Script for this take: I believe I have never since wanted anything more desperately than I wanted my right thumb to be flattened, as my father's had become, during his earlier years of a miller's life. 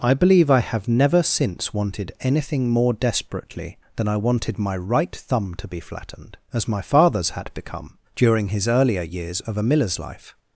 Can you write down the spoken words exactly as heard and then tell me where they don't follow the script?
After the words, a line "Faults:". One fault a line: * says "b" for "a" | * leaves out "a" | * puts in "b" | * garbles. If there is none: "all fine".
I believe I have never since wanted anything more desperately than I wanted my right thumb to be flattened, as my father's had become, during his earlier years of a miller's life.
Faults:
all fine